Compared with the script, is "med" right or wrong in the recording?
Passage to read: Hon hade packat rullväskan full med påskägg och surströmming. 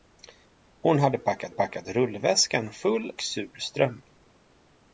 wrong